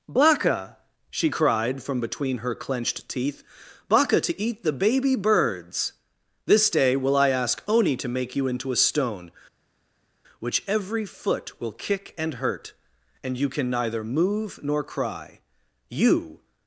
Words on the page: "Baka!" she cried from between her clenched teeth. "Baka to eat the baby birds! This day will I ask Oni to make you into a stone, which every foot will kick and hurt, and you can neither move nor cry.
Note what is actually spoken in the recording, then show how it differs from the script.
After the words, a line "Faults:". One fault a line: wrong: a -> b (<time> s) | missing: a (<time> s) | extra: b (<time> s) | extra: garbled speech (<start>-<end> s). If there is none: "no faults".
"Baka!" she cried from between her clenched teeth. "Baka to eat the baby birds! This day will I ask Oni to make you into a stone, which every foot will kick and hurt, and you can neither move nor cry. You
Faults:
extra: You (15.9 s)